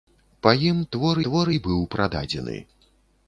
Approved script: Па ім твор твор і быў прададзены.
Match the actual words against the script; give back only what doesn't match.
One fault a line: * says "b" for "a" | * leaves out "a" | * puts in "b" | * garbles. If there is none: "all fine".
all fine